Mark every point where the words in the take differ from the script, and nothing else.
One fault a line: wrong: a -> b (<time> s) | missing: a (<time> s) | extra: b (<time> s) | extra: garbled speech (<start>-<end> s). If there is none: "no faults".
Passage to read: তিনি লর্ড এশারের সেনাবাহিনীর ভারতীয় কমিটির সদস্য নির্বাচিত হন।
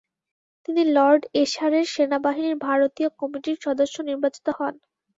no faults